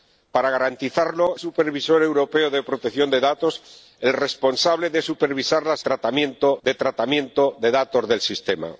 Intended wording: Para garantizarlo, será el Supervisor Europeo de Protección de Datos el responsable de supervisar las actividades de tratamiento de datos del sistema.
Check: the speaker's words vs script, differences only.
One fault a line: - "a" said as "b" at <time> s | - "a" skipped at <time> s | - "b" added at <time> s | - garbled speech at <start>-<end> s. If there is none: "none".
- "será" skipped at 1.4 s
- "actividades" said as "tratamiento" at 5.8 s